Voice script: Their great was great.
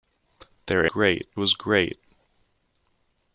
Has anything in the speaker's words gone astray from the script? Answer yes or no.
no